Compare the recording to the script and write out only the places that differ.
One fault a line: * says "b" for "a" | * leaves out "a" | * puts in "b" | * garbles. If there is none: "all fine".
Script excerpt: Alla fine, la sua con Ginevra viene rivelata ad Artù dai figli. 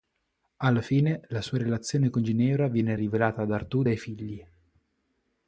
* puts in "relazione"